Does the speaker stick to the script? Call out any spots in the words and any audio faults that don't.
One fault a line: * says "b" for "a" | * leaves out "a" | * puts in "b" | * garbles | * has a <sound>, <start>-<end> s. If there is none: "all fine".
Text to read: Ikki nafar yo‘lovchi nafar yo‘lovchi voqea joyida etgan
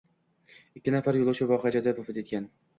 * leaves out "nafar yo‘lovchi"
* puts in "vafot"